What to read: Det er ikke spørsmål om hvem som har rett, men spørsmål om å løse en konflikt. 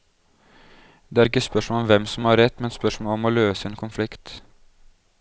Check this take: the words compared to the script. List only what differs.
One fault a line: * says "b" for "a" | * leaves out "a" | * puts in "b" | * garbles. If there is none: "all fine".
all fine